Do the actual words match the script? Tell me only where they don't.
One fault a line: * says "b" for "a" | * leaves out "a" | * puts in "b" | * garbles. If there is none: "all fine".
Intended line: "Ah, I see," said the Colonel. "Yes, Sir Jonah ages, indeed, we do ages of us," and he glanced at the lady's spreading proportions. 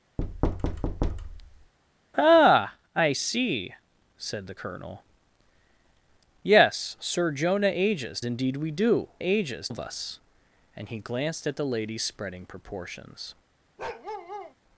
all fine